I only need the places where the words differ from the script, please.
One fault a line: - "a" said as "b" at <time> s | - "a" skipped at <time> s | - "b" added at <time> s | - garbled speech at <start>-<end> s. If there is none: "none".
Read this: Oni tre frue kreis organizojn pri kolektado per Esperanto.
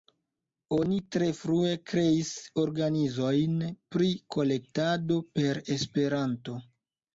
none